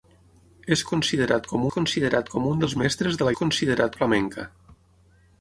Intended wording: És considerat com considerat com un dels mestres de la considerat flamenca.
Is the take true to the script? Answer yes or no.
yes